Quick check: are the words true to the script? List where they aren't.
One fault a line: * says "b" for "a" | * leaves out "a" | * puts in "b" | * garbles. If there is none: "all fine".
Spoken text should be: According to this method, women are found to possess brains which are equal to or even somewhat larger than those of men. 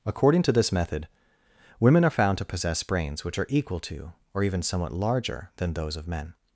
all fine